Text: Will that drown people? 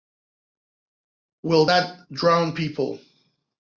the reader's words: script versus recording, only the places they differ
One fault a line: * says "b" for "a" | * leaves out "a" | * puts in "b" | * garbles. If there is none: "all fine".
all fine